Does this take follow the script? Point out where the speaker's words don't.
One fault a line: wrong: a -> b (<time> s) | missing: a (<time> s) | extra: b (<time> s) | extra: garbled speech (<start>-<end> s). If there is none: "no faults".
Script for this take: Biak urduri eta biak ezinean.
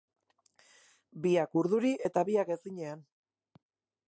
no faults